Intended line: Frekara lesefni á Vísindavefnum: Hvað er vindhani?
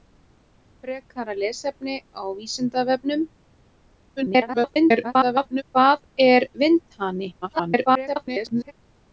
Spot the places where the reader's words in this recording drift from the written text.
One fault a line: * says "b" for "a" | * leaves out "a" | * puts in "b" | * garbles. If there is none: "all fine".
* garbles
* garbles